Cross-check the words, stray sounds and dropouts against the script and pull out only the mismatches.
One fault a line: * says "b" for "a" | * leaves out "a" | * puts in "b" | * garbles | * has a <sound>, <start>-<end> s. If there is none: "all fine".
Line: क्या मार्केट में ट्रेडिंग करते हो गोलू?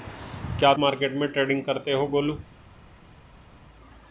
all fine